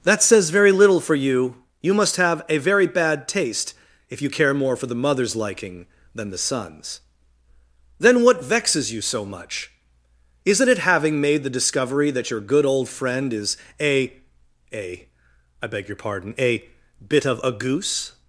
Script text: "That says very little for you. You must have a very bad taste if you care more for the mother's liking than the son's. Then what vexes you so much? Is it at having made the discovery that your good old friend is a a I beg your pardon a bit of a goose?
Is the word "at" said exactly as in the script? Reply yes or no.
no